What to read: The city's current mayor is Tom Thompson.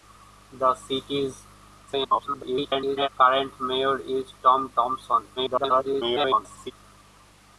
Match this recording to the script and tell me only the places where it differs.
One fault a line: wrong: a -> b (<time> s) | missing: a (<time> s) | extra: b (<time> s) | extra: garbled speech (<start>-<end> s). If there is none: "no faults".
extra: garbled speech (1.9-3.1 s)
extra: garbled speech (5.4-6.7 s)